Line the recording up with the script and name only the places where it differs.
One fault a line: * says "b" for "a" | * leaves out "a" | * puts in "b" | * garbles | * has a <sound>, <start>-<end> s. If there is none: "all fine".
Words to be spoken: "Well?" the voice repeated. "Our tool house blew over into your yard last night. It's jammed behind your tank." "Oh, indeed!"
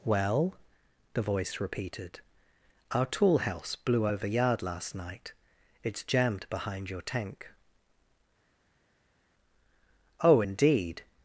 * leaves out "into your"